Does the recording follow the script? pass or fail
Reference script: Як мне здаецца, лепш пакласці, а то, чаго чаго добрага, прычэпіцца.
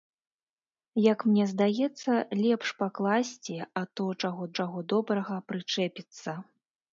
pass